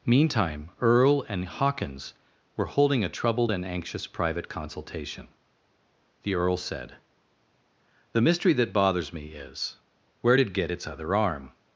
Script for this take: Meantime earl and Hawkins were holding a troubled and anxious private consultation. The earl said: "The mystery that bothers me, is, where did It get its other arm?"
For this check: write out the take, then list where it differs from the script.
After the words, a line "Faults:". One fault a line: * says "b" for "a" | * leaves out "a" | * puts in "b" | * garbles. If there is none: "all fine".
Meantime earl and Hawkins were holding a troubled and anxious private consultation. The earl said: "The mystery that bothers me, is, where did It get its other arm?"
Faults:
all fine